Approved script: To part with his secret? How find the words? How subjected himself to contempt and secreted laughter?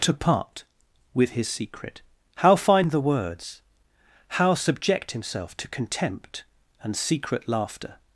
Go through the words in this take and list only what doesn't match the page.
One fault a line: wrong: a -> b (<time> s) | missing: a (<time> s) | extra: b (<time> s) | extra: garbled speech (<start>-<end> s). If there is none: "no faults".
wrong: subjected -> subject (4.5 s)
wrong: secreted -> secret (7.0 s)